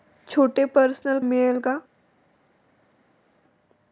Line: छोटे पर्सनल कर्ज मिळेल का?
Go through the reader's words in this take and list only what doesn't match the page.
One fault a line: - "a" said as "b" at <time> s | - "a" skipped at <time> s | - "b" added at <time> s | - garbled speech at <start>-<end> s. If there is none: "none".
- "कर्ज" skipped at 1.2 s